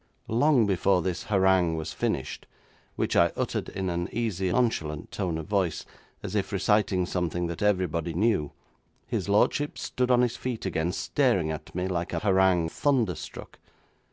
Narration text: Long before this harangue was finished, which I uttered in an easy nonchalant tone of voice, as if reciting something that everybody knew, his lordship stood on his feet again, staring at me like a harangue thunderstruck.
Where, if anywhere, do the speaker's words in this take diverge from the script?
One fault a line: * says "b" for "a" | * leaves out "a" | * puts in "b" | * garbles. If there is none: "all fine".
all fine